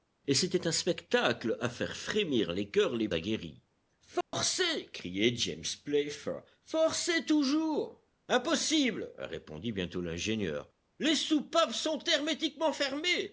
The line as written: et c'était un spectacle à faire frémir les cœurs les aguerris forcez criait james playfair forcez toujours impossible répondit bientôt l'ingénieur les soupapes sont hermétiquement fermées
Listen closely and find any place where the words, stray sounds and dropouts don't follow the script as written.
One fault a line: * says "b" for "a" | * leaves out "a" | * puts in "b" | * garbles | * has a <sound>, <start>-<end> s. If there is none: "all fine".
* has a dropout, 4.2-4.3 s